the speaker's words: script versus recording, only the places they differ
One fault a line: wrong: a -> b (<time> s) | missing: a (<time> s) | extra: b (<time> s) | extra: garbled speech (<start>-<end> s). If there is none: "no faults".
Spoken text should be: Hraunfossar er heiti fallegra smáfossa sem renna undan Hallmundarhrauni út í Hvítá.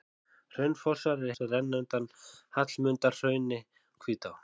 missing: heiti fallegra smáfossa (1.4 s)
missing: út (3.6 s)